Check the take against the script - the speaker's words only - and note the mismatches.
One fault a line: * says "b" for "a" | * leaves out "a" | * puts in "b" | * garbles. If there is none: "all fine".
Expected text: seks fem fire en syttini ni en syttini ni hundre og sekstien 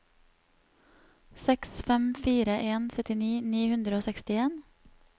* leaves out "en syttini ni"